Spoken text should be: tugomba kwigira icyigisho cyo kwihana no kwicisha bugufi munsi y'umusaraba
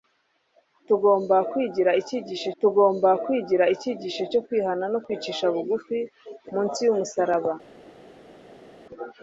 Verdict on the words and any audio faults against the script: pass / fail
fail